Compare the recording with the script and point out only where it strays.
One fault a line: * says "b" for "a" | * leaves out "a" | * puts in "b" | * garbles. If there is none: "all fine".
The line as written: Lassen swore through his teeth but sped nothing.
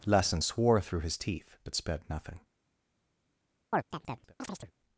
all fine